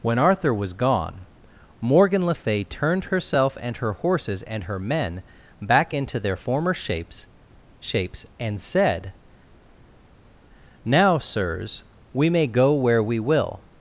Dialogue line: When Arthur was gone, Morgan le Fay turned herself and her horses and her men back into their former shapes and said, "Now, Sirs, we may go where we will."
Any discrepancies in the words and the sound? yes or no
yes